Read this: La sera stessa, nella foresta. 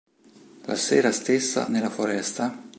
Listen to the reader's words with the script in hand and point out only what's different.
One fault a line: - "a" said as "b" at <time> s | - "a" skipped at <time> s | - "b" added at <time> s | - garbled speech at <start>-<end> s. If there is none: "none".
none